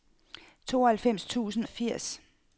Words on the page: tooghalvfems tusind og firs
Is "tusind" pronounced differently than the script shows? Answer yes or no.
no